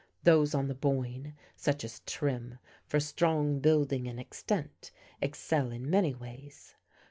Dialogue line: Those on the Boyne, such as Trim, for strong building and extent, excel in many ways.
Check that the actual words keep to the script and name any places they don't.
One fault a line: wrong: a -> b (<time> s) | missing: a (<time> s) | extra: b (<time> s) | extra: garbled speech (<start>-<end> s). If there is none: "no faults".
no faults